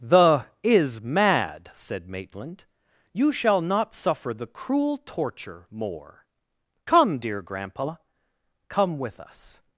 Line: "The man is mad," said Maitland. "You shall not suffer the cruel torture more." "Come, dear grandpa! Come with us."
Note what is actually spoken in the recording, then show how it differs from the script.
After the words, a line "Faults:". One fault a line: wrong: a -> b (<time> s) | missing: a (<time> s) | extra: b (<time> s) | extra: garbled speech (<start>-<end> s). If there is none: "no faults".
"The is mad," said Maitland. "You shall not suffer the cruel torture more." "Come, dear grandpa! Come with us."
Faults:
missing: man (0.5 s)